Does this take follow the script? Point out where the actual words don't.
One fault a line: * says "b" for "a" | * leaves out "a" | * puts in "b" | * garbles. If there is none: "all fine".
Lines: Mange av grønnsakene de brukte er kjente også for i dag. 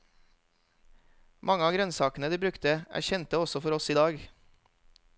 * puts in "oss"